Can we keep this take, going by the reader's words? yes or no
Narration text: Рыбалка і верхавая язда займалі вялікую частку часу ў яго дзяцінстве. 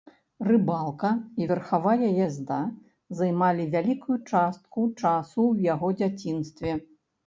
yes